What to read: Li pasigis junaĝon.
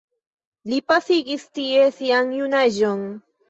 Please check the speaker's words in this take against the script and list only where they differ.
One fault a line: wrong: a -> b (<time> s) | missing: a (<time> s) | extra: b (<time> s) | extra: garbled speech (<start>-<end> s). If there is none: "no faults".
extra: tie sian (1.6 s)